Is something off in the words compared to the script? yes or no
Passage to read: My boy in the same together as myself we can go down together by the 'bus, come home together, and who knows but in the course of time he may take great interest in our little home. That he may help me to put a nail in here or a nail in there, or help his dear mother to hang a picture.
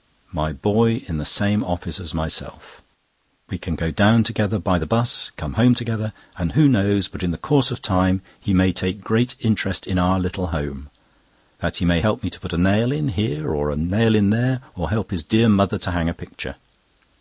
yes